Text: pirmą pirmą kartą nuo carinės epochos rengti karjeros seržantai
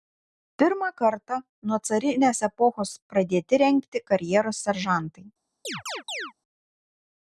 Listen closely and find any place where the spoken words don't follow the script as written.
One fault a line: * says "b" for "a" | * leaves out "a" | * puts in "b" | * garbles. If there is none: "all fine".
* leaves out "pirmą"
* puts in "pradėti"